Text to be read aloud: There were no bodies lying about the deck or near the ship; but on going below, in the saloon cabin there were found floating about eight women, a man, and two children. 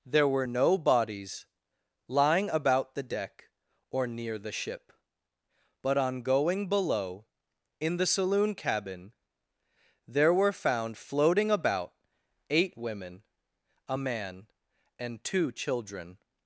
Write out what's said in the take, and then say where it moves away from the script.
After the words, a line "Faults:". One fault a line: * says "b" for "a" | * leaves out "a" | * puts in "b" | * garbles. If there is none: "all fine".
There were no bodies lying about the deck or near the ship; but on going below, in the saloon cabin there were found floating about eight women, a man, and two children.
Faults:
all fine